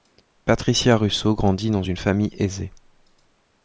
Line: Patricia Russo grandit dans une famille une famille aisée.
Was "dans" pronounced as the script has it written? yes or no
yes